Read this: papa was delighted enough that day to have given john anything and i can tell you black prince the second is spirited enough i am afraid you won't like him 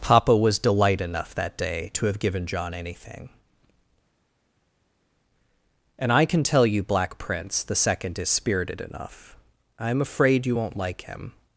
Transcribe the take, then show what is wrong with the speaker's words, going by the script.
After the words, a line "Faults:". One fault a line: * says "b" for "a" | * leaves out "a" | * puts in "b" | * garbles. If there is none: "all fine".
papa was delight enough that day to have given john anything and i can tell you black prince the second is spirited enough i am afraid you won't like him
Faults:
* says "delight" for "delighted"